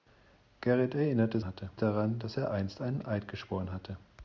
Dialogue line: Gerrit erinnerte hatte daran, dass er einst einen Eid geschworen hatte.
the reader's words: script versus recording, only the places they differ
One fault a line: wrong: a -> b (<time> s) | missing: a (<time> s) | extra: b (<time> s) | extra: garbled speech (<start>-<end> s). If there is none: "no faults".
no faults